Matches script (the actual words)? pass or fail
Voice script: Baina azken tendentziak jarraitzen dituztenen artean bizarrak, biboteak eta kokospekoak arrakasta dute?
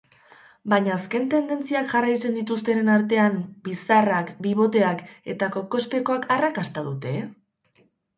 pass